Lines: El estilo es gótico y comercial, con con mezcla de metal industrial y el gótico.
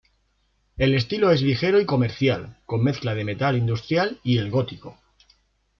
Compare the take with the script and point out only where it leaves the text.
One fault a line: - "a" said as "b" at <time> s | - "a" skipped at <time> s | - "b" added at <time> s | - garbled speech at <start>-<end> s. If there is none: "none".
- "gótico" said as "ligero" at 1.4 s
- "con" skipped at 2.8 s